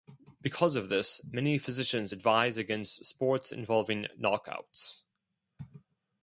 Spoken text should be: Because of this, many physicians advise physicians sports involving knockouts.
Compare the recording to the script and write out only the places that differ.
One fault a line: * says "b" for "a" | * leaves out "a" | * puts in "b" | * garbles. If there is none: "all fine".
* says "against" for "physicians"